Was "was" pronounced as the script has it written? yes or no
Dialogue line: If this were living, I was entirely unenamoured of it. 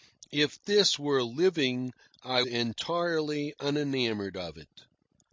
no